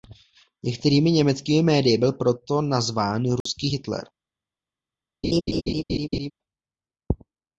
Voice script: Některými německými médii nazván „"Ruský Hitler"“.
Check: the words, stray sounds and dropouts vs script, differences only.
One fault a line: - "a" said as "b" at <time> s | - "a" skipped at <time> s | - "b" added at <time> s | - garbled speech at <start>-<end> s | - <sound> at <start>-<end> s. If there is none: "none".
- "byl proto" added at 2.0 s
- dropout at 3.4-3.5 s
- laugh at 5.2-6.3 s